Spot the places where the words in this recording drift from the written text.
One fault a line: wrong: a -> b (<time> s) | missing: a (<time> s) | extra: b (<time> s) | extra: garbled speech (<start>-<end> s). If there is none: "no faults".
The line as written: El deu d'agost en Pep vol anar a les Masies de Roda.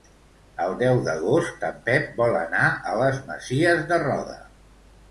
no faults